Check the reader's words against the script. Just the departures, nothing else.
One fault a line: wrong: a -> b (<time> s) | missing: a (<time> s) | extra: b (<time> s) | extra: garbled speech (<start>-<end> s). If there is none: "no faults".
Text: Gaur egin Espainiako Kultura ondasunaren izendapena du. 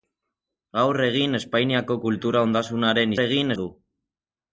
wrong: izendapena -> egin (3.2 s)